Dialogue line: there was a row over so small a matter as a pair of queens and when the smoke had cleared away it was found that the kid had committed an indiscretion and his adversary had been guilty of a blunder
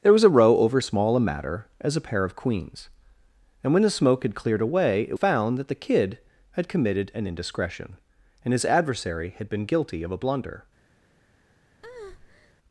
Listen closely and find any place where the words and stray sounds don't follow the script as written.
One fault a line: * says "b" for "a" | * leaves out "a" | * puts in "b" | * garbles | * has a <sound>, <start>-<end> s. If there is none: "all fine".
* leaves out "so"
* leaves out "was"
* has a breath, 11.8-12.5 s